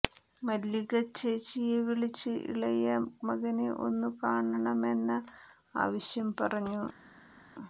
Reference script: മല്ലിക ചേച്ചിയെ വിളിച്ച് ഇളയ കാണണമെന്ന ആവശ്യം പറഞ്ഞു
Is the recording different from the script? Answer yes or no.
yes